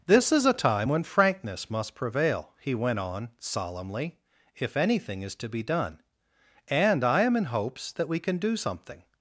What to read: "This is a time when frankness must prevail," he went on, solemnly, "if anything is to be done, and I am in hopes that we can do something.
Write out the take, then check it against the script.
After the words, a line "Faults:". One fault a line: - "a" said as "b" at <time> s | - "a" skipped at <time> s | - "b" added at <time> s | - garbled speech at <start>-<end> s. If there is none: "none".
"This is a time when frankness must prevail," he went on, solemnly, "if anything is to be done, and I am in hopes that we can do something.
Faults:
none